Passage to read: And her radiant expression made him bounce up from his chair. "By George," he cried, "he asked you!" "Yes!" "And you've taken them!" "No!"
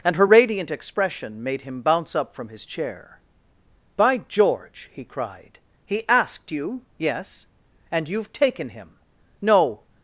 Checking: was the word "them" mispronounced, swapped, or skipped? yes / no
yes